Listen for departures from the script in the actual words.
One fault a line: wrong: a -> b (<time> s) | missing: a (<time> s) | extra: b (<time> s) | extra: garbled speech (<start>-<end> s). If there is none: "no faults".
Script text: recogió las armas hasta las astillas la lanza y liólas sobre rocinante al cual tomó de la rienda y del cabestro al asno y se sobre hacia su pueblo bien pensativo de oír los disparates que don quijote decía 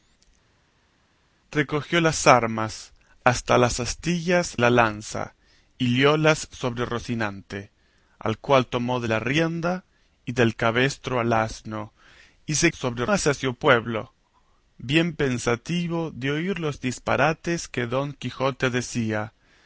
no faults